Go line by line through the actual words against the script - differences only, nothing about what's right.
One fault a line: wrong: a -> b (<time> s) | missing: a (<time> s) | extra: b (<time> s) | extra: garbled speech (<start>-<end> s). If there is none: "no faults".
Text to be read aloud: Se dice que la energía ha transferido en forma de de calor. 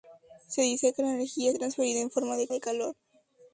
no faults